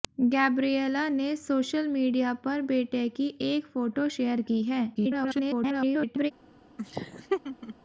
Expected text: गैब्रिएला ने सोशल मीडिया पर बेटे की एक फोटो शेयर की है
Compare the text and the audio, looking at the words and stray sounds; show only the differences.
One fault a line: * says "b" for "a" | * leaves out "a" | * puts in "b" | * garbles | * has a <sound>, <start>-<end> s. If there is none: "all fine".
* garbles
* has a laugh, 6.8-7.7 s